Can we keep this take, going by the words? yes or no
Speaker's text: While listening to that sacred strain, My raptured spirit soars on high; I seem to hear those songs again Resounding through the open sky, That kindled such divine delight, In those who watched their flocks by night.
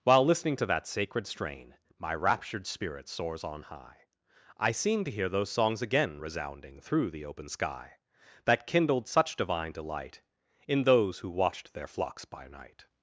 yes